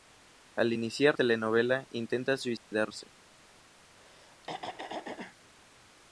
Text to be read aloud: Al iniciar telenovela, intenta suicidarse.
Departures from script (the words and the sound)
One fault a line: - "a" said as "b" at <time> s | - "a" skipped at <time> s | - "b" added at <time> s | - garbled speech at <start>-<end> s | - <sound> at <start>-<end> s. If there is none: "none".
- dropout at 2.6-2.7 s
- throat clearing at 4.0-5.4 s